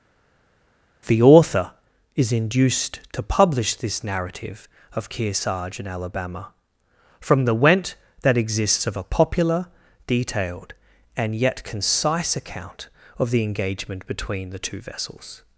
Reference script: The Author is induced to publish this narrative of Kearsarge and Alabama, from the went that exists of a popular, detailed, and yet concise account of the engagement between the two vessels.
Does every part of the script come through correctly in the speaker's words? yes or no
yes